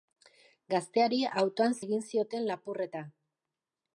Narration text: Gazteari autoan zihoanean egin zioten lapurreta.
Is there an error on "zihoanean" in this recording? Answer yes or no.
yes